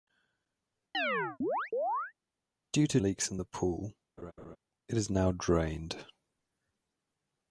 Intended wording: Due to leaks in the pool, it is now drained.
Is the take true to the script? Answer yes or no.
yes